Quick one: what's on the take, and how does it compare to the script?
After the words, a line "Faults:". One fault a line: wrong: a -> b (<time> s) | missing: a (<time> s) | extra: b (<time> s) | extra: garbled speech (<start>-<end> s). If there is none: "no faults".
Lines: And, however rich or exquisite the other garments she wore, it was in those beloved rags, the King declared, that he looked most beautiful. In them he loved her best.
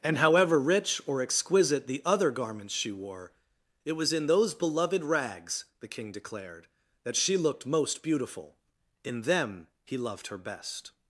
And, however rich or exquisite the other garments she wore, it was in those beloved rags, the King declared, that she looked most beautiful. In them he loved her best.
Faults:
wrong: he -> she (7.2 s)